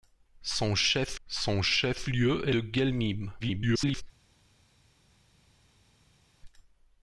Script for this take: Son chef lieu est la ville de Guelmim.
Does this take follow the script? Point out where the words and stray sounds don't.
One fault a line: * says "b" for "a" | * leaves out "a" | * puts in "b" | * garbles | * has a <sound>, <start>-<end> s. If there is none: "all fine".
* puts in "son chef"
* leaves out "la ville"
* garbles